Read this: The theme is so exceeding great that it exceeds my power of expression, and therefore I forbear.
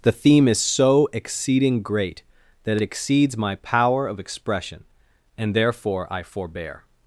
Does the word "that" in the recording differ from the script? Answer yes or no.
no